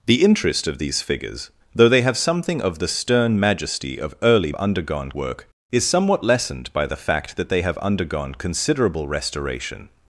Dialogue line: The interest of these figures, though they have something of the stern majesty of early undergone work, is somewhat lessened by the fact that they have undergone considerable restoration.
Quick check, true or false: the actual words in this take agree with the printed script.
true